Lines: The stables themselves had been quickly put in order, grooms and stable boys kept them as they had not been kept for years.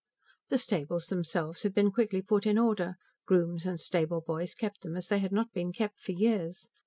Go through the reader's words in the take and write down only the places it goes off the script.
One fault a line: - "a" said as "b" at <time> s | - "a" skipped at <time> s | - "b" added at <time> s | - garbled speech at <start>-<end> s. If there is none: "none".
none